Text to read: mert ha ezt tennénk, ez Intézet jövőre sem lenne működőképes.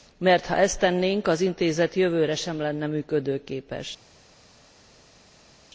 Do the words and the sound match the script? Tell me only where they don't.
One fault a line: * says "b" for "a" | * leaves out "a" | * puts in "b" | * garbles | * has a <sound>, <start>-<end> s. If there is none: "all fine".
* says "az" for "ez"